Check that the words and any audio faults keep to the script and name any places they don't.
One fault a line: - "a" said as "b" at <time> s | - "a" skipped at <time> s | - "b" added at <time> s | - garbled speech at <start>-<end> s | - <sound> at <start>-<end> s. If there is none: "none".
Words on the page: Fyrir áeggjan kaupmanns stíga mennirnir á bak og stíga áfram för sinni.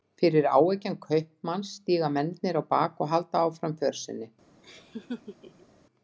- "stíga" said as "halda" at 3.1 s
- laugh at 4.6-5.7 s